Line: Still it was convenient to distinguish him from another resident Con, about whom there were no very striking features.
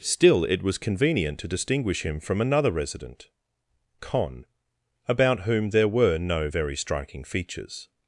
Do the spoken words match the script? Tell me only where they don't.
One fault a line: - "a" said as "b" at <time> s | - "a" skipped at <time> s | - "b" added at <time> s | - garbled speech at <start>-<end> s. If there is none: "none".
none